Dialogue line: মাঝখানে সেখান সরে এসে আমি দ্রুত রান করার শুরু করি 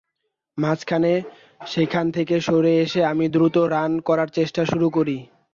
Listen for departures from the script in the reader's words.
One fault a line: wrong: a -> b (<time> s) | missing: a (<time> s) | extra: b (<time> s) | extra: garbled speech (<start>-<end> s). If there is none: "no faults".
extra: থেকে (2.1 s)
extra: চেষ্টা (4.3 s)